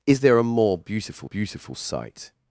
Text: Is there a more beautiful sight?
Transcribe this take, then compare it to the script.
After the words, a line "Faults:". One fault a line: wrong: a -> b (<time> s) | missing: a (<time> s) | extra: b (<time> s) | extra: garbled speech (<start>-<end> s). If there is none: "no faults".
Is there a more beautiful beautiful sight?
Faults:
extra: beautiful (1.2 s)